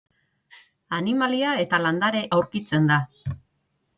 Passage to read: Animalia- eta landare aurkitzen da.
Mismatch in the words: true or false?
false